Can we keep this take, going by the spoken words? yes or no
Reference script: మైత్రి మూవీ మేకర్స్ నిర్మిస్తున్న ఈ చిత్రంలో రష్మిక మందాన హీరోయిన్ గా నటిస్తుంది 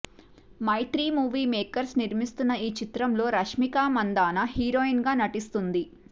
yes